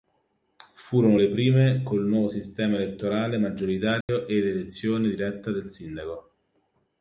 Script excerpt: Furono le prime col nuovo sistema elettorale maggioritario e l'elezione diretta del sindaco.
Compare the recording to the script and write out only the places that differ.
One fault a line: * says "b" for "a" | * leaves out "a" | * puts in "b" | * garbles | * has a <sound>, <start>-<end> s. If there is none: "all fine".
* has a dropout, 4.0-4.1 s